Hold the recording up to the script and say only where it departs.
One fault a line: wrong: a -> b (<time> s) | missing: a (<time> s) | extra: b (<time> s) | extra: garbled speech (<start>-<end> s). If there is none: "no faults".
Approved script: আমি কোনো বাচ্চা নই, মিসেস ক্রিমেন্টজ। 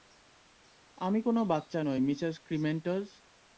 no faults